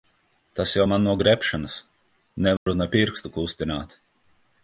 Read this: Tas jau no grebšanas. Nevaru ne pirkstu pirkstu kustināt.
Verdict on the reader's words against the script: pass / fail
fail